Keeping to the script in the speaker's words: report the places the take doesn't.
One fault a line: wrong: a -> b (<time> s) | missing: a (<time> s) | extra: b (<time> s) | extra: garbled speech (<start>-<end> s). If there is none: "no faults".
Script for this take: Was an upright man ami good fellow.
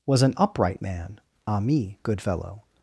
no faults